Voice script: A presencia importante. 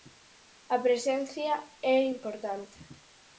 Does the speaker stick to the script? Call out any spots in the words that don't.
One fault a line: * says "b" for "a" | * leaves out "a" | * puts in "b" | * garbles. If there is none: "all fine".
* puts in "é"